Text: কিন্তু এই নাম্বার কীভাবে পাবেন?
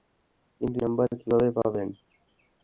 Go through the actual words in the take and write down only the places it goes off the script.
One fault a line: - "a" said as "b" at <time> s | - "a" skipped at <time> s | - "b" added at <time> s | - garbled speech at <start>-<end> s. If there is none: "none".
- "এই" skipped at 0.8 s